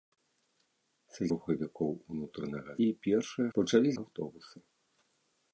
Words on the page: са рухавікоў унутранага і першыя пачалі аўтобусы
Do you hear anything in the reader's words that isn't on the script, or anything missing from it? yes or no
no